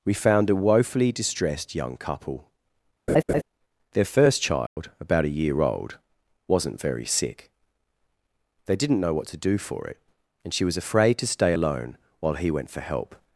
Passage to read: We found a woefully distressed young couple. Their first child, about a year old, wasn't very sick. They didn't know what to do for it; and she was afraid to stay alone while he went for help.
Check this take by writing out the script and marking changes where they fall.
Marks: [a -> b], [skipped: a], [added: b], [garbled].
We found a woefully distressed young couple. Their first child, about a year old, wasn't very sick. They didn't know what to do for it; and she was afraid to stay alone while he went for help.